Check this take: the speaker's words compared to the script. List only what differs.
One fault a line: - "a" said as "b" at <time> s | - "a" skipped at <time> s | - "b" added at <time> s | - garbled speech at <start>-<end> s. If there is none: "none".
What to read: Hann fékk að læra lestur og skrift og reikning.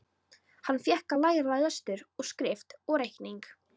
none